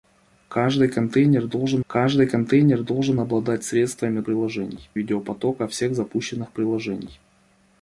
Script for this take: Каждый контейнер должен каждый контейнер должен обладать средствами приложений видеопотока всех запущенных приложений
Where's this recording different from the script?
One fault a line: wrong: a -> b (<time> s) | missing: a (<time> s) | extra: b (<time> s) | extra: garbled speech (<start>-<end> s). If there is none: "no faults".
no faults